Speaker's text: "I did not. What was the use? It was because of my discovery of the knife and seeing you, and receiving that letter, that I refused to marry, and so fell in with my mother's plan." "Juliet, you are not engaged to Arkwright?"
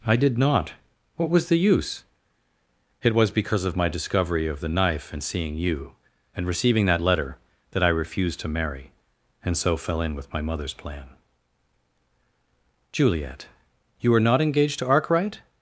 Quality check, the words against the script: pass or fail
pass